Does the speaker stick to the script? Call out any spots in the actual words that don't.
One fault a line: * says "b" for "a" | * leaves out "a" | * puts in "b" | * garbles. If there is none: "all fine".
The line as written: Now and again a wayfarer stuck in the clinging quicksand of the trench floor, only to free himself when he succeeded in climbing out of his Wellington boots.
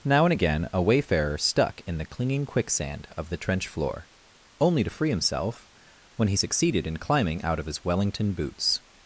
all fine